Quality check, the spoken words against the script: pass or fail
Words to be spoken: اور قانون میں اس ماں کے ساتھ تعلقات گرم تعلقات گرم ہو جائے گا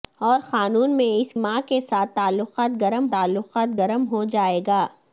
pass